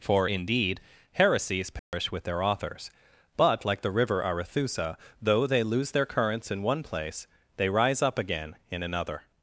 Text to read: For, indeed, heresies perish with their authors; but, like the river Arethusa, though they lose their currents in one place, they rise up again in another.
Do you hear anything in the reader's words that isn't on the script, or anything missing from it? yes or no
no